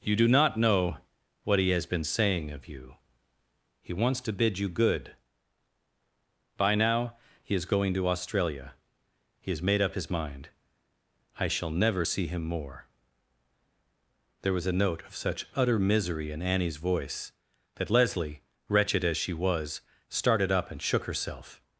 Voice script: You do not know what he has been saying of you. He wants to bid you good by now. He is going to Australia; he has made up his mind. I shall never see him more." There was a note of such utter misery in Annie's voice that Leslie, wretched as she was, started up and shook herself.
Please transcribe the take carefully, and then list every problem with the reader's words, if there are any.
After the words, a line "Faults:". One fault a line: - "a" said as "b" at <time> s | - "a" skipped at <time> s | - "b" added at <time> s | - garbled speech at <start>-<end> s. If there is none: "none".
You do not know what he has been saying of you. He wants to bid you good by now. He is going to Australia; he has made up his mind. I shall never see him more." There was a note of such utter misery in Annie's voice that Leslie, wretched as she was, started up and shook herself.
Faults:
none